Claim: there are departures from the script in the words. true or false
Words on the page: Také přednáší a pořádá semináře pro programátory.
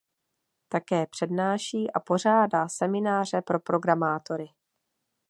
false